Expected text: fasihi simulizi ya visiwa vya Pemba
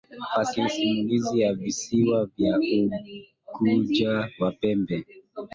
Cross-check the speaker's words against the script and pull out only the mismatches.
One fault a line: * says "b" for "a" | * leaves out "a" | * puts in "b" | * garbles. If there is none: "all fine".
* puts in "Unguja na"